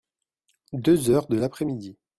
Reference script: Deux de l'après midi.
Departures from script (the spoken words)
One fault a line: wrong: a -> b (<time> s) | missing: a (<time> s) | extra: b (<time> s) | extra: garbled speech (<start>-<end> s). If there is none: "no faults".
extra: heures (1.1 s)